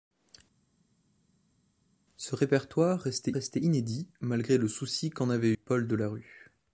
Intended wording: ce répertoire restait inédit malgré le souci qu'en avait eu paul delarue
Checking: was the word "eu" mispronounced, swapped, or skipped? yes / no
yes